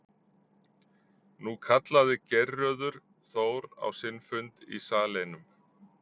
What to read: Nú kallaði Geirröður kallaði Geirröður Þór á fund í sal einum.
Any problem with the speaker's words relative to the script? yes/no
yes